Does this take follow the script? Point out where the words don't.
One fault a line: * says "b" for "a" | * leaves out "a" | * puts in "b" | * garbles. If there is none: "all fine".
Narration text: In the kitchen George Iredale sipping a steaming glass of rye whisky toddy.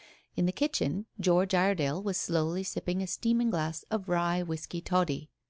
* puts in "was slowly"